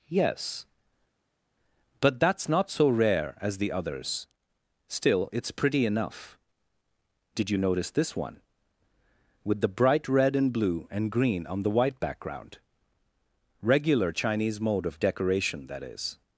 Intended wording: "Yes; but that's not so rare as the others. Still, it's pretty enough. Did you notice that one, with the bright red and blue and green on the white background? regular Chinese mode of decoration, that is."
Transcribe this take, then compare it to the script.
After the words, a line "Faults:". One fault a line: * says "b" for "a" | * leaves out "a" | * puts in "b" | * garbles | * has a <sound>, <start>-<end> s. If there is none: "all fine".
"Yes; but that's not so rare as the others. Still, it's pretty enough. Did you notice this one, with the bright red and blue and green on the white background? regular Chinese mode of decoration, that is."
Faults:
* says "this" for "that"